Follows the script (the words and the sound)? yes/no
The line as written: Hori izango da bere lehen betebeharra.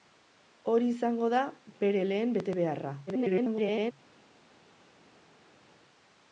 no